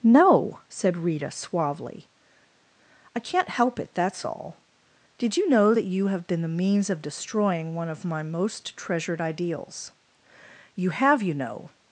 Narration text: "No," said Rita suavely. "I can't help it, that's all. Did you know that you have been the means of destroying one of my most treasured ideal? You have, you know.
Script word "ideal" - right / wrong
wrong